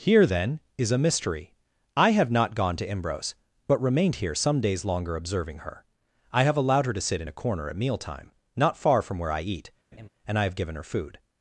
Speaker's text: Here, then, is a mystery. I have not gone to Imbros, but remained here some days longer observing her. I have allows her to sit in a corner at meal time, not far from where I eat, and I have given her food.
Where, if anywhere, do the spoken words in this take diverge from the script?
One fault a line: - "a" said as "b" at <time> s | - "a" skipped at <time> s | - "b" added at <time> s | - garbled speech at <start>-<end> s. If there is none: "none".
- "allows" said as "allowed" at 6.6 s